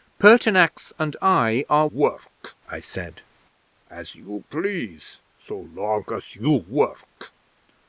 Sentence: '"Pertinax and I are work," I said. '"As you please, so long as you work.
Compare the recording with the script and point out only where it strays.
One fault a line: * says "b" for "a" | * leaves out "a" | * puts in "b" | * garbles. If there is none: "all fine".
all fine